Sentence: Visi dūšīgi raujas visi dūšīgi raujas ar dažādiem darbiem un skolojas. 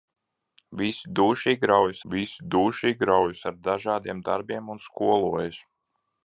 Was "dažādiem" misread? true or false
false